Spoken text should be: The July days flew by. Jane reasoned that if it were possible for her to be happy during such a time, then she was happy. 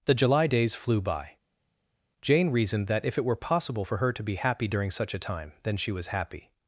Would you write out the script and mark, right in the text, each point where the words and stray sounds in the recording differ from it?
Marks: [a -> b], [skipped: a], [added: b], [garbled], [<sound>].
The July days flew by. Jane reasoned that if it were possible for her to be happy during such a time, then she was happy.